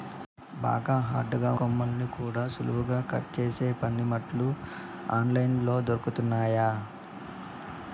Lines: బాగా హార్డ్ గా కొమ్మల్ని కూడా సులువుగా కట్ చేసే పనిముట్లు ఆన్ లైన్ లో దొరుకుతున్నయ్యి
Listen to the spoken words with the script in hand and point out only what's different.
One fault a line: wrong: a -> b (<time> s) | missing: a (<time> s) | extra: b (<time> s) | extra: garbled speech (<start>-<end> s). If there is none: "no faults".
no faults